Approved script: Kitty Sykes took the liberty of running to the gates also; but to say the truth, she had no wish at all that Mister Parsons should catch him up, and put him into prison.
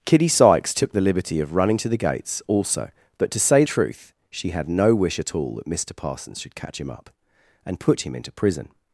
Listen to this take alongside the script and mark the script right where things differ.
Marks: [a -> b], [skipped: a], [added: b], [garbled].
Kitty Sykes took the liberty of running to the gates also; but to say [skipped: the] truth, she had no wish at all that Mister Parsons should catch him up, and put him into prison.